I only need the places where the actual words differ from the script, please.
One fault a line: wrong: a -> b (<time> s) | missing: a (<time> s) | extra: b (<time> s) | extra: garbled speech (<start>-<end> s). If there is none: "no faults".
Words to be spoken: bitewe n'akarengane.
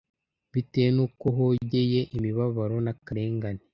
extra: n'uko hogeye imibabaro (0.9 s)